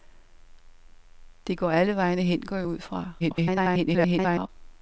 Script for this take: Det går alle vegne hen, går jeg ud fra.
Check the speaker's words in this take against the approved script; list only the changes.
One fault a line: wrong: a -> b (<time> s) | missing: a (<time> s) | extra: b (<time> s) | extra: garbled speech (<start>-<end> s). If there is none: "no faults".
extra: garbled speech (3.2-4.5 s)